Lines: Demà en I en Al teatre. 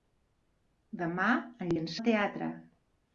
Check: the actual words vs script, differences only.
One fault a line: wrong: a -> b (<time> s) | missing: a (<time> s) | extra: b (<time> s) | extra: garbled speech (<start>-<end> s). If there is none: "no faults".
no faults